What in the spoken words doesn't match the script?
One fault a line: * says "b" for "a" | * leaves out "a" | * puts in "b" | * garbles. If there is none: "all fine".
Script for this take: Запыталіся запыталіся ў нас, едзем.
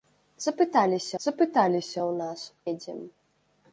all fine